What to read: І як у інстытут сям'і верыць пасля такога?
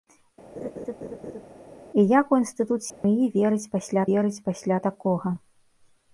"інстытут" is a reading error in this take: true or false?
false